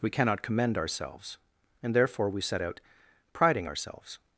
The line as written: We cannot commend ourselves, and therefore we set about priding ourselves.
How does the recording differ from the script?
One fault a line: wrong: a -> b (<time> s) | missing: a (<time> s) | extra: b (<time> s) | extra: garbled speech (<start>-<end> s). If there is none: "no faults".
wrong: about -> out (2.6 s)